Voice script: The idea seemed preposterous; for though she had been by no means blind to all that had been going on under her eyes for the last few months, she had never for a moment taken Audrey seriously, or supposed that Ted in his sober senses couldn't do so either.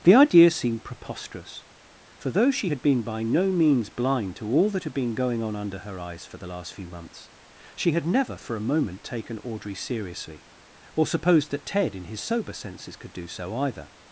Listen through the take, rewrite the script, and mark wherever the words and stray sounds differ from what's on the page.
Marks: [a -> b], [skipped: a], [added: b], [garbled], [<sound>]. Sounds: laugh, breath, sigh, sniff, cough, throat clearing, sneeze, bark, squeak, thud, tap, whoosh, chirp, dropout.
The idea seemed preposterous; for though she had been by no means blind to all that had been going on under her eyes for the last few months, she had never for a moment taken Audrey seriously, or supposed that Ted in his sober senses [couldn't -> could] do so either.